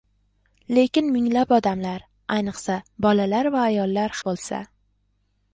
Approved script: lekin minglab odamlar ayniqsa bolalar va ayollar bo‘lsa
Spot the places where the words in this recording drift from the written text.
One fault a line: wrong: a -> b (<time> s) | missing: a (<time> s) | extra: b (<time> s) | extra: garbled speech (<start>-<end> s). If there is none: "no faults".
no faults